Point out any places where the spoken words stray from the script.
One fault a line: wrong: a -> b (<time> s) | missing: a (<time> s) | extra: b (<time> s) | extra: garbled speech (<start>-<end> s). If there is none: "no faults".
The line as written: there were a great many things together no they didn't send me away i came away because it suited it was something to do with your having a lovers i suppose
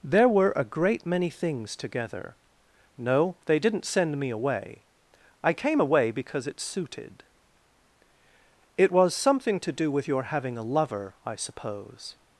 wrong: lovers -> lover (10.6 s)